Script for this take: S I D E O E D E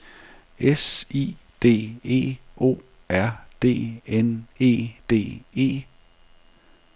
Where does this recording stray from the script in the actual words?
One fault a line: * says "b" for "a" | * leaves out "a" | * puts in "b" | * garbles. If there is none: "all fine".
* puts in "R D N"